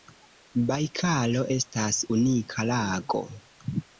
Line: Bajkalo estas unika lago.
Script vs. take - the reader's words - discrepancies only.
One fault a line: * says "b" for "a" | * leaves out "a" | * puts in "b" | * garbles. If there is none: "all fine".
all fine